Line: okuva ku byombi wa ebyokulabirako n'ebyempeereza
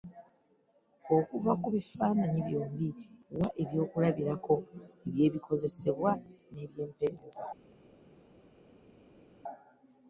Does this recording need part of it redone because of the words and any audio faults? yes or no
yes